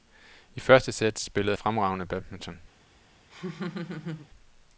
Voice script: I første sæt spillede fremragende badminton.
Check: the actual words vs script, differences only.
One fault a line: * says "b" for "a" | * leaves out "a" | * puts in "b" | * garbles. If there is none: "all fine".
all fine